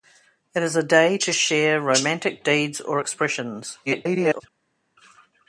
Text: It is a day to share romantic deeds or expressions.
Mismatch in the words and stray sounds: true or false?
true